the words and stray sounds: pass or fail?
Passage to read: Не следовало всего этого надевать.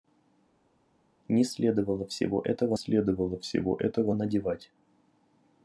fail